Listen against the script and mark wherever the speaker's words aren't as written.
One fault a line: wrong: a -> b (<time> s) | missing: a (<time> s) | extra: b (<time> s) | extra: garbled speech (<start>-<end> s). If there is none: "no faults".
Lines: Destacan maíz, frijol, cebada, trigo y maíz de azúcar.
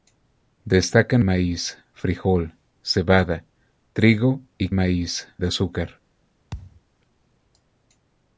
no faults